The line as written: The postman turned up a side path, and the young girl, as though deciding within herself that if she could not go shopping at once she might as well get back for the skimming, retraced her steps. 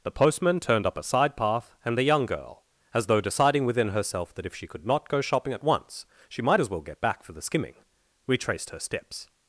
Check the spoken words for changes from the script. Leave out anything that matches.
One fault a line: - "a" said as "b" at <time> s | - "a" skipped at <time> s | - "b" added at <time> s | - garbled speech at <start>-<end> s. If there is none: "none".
none